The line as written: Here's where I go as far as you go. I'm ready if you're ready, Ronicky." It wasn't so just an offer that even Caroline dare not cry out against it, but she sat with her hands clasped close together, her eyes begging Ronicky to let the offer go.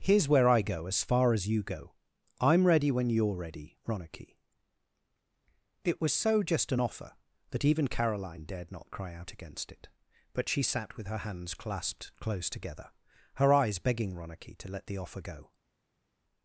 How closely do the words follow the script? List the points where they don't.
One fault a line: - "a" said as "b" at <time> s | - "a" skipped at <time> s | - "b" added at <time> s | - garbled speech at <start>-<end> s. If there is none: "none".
- "if" said as "when" at 2.9 s
- "wasn't" said as "was" at 6.0 s
- "dare" said as "dared" at 8.4 s